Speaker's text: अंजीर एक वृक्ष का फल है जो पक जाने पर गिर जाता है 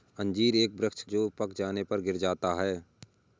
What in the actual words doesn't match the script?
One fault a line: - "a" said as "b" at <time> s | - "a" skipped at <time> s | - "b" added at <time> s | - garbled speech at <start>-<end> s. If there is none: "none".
- "का फल है" skipped at 1.0 s